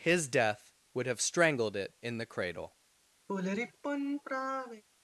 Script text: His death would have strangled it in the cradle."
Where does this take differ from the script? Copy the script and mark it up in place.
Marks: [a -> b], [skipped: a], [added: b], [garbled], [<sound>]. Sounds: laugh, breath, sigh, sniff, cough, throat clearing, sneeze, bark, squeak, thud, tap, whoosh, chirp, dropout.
His death would have strangled it in the cradle." [sigh]